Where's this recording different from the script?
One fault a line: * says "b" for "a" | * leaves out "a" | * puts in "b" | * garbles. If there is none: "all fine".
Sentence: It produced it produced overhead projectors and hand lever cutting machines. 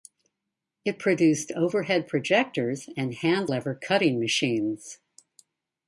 * leaves out "it produced"